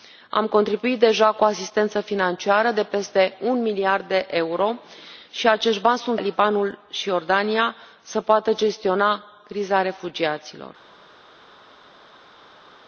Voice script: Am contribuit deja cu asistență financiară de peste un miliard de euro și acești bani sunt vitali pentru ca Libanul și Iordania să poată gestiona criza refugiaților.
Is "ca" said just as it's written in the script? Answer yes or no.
no